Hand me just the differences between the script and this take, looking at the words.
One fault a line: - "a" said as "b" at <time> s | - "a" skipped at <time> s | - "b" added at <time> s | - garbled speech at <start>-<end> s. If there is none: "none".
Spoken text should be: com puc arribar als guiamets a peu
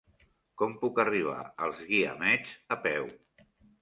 none